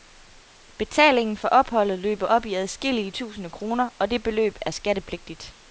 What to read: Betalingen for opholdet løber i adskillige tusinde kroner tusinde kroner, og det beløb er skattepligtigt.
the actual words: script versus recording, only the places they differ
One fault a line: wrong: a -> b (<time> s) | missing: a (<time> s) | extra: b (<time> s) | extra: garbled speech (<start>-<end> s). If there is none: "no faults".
extra: op (2.2 s)
missing: tusinde kroner (3.9 s)